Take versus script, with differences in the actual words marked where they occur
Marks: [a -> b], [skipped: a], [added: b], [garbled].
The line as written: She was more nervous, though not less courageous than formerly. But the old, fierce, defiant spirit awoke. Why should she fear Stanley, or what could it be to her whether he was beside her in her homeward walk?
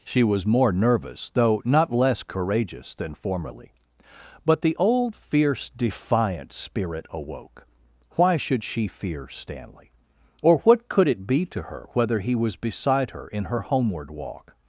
She was more nervous, though not less courageous than formerly. But the old, fierce, defiant spirit awoke. Why should she fear Stanley, or what could it be to her whether he was beside her in her homeward walk?